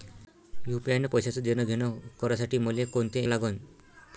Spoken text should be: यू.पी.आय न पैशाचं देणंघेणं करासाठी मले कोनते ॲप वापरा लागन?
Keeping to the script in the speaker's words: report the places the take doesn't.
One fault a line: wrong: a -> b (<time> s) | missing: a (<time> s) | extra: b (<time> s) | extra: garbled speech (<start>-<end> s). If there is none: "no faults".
missing: ॲप वापरा (3.3 s)